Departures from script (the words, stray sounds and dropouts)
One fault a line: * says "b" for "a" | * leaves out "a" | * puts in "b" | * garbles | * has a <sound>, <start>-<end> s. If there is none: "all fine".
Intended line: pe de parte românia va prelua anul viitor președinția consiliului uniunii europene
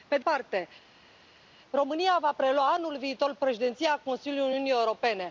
all fine